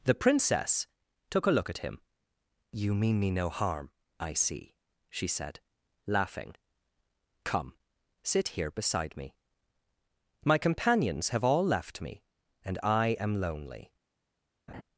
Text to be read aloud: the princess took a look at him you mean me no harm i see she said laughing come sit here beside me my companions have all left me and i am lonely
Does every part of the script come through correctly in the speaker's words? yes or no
yes